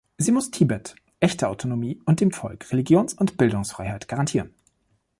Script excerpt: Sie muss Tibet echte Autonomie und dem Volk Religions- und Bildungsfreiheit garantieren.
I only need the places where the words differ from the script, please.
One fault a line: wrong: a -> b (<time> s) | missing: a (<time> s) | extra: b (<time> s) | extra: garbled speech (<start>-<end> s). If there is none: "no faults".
no faults